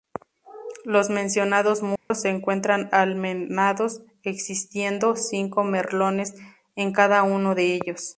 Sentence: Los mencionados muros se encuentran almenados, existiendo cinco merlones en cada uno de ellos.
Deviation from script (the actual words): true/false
false